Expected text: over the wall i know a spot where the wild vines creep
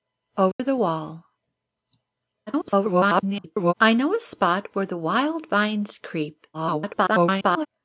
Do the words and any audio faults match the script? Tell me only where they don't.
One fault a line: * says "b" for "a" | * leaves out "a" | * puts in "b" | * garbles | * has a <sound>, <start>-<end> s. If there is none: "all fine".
* has a dropout, 0.5-0.6 s
* garbles
* garbles